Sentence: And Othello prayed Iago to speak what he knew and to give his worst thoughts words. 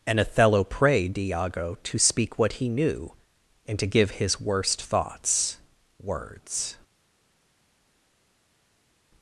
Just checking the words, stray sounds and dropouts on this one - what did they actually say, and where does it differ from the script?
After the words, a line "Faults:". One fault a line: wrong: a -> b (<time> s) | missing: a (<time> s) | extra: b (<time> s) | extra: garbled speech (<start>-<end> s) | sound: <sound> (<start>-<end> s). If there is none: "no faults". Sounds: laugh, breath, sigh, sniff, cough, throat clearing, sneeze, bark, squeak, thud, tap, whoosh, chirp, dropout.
And Othello prayed Iago to speak what he knew and to give his worst thoughts words.
Faults:
no faults